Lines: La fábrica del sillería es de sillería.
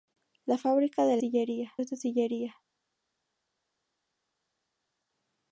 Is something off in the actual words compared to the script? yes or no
no